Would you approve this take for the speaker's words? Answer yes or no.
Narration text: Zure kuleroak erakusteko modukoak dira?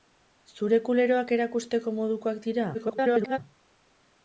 no